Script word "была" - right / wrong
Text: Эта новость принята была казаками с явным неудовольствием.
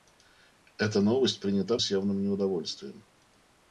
wrong